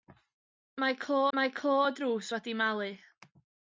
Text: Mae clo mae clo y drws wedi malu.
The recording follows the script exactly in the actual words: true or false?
true